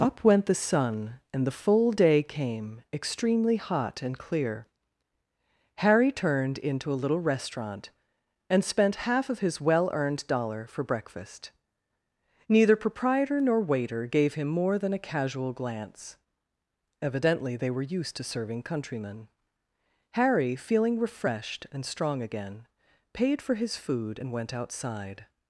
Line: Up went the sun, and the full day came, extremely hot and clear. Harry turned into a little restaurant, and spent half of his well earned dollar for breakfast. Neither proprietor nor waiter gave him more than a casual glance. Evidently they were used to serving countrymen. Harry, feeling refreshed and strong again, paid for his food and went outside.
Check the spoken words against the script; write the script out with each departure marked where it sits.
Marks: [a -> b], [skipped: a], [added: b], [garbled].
Up went the sun, and the full day came, extremely hot and clear. Harry turned into a little restaurant, and spent half of his well earned dollar for breakfast. Neither proprietor nor waiter gave him more than a casual glance. Evidently they were used to serving countrymen. Harry, feeling refreshed and strong again, paid for his food and went outside.